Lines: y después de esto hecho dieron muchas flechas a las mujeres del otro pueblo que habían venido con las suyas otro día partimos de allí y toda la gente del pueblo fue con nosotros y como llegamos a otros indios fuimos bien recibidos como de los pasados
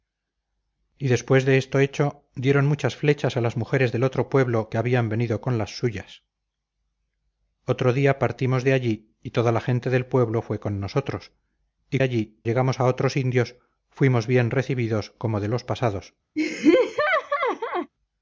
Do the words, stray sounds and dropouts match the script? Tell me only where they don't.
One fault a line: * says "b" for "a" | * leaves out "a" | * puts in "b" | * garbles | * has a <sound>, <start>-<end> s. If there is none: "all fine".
* says "allí" for "como"
* has a laugh, 16.4-17.9 s